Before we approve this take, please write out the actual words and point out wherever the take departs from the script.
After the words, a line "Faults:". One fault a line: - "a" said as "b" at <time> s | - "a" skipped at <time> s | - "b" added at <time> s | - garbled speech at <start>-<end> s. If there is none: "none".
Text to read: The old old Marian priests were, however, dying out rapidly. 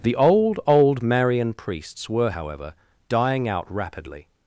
The old old Marian priests were, however, dying out rapidly.
Faults:
none